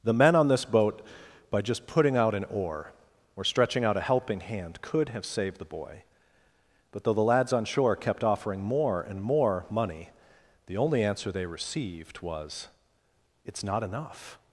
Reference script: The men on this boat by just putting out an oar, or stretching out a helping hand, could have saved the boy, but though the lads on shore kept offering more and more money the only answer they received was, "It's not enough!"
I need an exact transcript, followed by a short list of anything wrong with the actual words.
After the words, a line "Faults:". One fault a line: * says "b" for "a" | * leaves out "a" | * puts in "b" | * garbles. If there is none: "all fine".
The men on this boat by just putting out an oar, or stretching out a helping hand, could have saved the boy, but though the lads on shore kept offering more and more money the only answer they received was, "It's not enough!"
Faults:
all fine